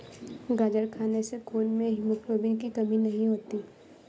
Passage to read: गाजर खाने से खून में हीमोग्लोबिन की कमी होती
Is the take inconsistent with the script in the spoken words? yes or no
yes